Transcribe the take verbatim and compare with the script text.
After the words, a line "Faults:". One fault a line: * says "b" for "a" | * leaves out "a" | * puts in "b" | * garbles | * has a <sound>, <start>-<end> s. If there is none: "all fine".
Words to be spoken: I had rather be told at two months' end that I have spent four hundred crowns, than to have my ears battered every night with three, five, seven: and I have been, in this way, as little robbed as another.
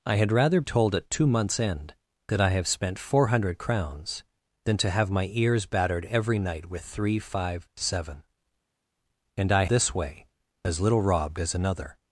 I had rather told at two months' end that I have spent four hundred crowns, than to have my ears battered every night with three, five, seven: and I this way, as little robbed as another.
Faults:
* leaves out "be"
* leaves out "have been in"